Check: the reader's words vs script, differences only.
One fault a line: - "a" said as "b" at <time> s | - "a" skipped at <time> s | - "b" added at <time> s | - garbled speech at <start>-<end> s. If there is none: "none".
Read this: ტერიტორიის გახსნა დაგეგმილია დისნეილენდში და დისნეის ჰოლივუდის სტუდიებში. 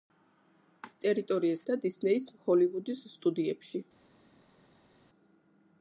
- "გახსნა დაგეგმილია დისნეილენდში" skipped at 1.6 s